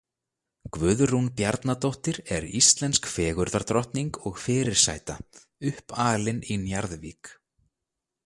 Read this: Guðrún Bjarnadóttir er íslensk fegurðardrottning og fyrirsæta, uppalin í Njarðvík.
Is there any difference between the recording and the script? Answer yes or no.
no